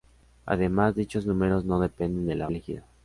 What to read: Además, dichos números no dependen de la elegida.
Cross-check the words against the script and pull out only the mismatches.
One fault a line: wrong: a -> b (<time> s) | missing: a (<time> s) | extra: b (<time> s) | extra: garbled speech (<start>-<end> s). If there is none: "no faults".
no faults